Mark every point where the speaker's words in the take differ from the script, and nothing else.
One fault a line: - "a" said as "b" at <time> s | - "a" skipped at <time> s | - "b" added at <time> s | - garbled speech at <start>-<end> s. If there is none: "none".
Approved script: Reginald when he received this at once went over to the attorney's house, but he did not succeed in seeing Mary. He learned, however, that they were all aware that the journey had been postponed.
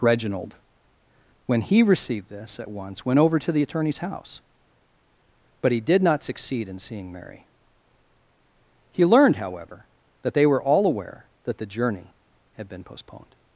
none